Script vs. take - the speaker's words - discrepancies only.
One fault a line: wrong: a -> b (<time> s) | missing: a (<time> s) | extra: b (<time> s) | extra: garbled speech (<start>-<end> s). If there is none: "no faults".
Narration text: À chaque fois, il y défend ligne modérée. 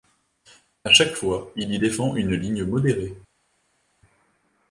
extra: une (2.2 s)